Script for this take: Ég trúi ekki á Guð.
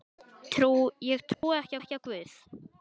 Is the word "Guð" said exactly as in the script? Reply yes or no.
yes